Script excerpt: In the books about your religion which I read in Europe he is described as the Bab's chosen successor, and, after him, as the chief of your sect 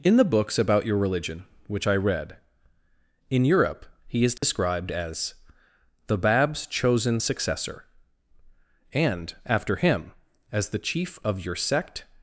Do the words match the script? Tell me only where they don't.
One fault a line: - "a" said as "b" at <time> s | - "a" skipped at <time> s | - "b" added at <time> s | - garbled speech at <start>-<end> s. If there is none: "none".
none